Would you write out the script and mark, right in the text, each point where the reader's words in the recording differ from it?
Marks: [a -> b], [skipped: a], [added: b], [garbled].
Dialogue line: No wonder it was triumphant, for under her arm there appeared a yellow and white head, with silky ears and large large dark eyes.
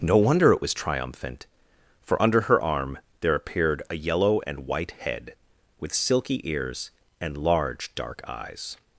No wonder it was triumphant, for under her arm there appeared a yellow and white head, with silky ears and large [skipped: large] dark eyes.